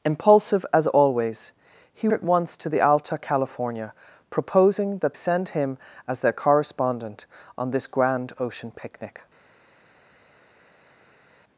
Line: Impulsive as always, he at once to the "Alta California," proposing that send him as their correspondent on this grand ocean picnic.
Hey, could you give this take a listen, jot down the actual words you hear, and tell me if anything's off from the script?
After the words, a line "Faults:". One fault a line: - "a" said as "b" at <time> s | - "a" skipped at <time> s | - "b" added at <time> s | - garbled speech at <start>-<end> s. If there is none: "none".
Impulsive as always, he at once to the "Alta California," proposing that send him as their correspondent on this grand ocean picnic.
Faults:
none